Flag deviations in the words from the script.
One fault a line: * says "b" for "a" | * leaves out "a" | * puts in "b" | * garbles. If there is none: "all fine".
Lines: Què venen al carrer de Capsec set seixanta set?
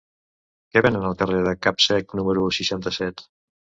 * says "número" for "set"